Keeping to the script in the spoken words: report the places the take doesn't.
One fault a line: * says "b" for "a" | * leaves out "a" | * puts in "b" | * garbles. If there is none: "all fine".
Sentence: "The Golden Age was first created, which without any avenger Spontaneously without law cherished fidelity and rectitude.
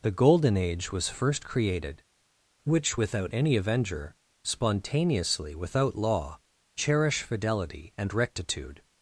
* says "cherish" for "cherished"